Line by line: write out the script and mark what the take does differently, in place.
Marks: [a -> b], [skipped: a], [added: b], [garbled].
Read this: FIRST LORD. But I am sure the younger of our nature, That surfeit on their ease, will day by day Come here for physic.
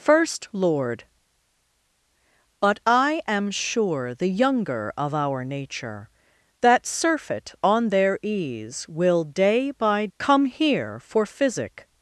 FIRST LORD. But I am sure the younger of our nature, That surfeit on their ease, will day by [skipped: day] Come here for physic.